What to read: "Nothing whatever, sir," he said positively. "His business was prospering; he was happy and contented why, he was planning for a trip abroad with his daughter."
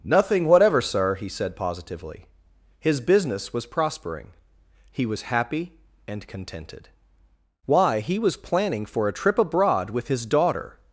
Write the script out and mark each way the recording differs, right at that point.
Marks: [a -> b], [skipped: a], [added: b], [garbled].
"Nothing whatever, sir," he said positively. "His business was prospering; he was happy and contented why, he was planning for a trip abroad with his daughter."